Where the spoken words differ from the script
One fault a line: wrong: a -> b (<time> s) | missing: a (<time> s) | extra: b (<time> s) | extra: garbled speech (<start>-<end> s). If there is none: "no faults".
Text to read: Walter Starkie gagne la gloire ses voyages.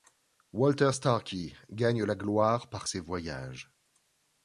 extra: par (2.7 s)